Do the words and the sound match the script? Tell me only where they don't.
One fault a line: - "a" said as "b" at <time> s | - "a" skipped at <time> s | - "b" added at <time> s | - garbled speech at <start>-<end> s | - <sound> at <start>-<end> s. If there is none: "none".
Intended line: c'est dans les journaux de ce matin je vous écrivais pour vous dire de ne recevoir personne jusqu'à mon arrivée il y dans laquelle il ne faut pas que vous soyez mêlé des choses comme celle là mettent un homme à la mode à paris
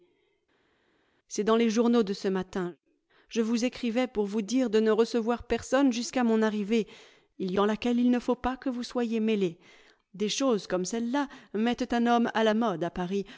none